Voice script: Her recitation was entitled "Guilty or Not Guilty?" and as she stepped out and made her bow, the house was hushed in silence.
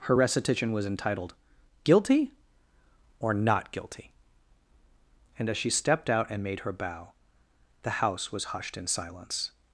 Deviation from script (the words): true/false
false